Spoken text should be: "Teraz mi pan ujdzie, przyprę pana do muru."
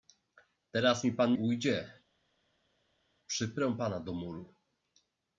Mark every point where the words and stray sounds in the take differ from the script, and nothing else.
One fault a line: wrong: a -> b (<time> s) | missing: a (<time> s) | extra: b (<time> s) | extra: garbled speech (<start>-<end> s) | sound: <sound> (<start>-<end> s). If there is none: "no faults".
no faults